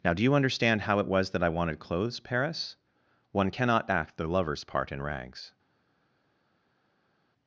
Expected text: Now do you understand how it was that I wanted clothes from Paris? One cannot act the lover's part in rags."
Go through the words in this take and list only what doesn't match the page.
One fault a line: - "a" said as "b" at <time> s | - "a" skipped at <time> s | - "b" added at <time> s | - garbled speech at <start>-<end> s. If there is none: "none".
- "from" skipped at 2.2 s